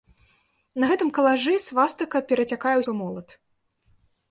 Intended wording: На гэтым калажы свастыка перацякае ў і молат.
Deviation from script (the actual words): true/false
false